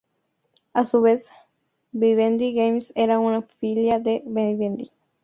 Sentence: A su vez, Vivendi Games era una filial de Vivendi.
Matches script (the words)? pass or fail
pass